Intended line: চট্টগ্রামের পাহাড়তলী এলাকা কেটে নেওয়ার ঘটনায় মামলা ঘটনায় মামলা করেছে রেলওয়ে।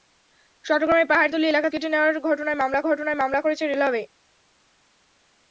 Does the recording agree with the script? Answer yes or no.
yes